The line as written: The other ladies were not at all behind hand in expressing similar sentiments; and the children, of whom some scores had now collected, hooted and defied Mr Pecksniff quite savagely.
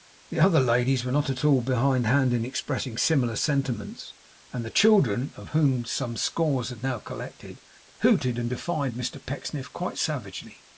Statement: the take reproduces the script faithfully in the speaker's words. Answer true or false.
true